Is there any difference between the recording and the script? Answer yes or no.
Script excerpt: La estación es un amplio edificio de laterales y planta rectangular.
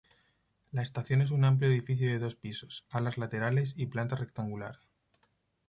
yes